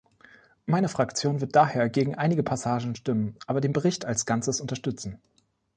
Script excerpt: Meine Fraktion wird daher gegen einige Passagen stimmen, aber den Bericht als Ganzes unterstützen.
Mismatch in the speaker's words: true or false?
false